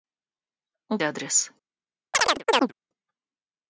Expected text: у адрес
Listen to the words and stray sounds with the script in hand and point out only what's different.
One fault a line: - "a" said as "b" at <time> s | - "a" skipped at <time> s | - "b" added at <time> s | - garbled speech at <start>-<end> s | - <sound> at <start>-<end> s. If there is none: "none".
- chirp at 2.1-2.7 s